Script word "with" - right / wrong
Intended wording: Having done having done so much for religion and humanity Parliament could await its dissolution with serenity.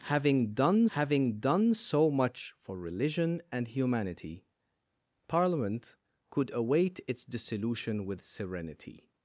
right